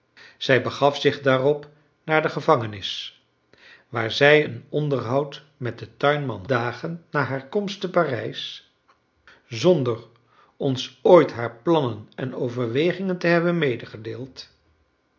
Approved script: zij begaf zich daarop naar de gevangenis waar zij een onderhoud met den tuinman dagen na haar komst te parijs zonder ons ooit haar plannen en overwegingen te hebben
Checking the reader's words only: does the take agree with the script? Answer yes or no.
yes